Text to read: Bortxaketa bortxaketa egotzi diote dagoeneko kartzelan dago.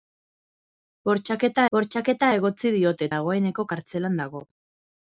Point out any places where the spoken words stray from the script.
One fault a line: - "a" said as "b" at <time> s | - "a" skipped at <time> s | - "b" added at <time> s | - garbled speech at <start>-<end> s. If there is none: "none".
none